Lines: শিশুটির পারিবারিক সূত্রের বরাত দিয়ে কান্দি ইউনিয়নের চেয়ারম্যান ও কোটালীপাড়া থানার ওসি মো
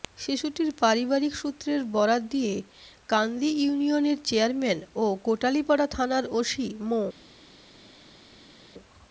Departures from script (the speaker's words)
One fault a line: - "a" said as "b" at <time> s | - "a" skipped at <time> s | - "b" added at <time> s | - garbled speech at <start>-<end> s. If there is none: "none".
none